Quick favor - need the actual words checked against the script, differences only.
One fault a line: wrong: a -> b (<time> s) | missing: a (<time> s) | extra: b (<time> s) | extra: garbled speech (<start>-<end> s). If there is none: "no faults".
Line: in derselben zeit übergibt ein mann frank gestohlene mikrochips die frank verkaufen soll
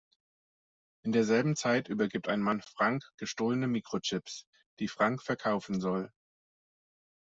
no faults